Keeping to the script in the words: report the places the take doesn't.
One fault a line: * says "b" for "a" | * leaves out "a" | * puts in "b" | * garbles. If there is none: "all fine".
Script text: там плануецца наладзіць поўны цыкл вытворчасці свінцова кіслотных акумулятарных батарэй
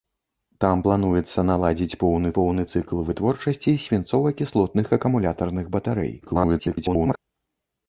* puts in "поўны"
* garbles